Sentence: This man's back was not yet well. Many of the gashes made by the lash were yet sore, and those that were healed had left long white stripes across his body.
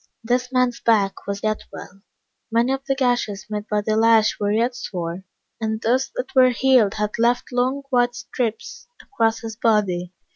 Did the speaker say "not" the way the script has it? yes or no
no